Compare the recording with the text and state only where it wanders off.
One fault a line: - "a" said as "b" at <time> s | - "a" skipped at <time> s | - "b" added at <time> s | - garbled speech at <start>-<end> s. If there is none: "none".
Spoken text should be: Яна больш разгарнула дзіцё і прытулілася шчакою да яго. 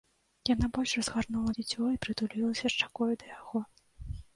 none